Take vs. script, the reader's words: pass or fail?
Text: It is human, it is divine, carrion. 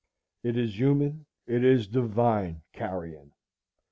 pass